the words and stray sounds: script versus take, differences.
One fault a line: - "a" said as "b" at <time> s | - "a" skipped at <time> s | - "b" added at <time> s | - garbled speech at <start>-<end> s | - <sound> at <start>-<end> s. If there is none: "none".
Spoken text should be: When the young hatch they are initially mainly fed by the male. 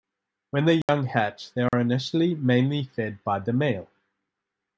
- dropout at 0.8-0.9 s
- dropout at 1.7-1.7 s